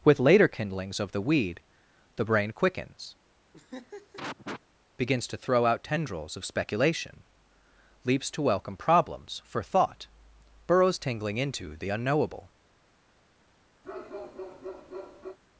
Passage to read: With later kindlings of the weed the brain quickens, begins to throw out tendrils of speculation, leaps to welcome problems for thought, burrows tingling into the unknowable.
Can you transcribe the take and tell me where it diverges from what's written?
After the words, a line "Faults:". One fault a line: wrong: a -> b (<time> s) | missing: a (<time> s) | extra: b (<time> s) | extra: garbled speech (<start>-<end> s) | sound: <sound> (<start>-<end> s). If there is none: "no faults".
With later kindlings of the weed the brain quickens, begins to throw out tendrils of speculation, leaps to welcome problems for thought, burrows tingling into the unknowable.
Faults:
sound: laugh (3.5-4.6 s)
sound: bark (13.8-15.4 s)